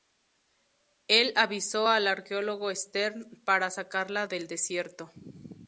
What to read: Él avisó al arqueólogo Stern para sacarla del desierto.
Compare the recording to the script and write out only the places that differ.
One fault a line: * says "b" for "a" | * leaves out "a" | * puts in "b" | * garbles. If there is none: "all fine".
all fine